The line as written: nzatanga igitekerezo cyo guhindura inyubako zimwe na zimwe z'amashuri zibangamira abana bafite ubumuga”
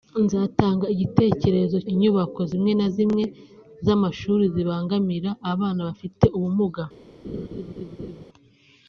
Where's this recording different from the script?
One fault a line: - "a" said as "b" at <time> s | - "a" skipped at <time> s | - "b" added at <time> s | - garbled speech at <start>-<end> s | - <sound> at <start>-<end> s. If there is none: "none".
- "cyo guhindura" skipped at 1.8 s
- laugh at 7.2-8.2 s